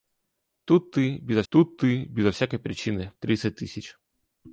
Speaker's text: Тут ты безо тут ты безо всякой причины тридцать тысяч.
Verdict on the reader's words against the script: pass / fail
pass